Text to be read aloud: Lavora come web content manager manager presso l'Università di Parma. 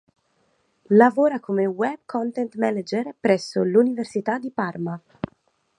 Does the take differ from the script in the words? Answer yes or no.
yes